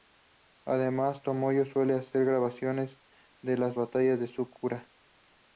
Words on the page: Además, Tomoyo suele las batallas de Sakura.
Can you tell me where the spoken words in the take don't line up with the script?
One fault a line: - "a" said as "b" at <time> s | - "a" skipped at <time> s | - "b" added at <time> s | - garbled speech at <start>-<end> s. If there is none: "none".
- "hacer grabaciones de" added at 1.9 s